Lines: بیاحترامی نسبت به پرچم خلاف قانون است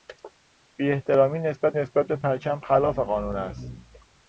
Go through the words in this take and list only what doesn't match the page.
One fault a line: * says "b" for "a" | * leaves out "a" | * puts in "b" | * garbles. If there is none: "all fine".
* puts in "نسبت"